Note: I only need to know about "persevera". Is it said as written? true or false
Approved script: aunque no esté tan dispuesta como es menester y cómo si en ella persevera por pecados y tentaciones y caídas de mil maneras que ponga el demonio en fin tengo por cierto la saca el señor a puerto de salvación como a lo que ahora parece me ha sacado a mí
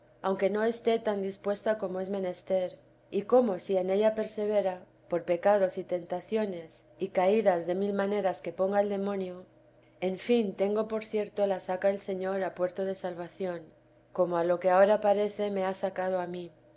true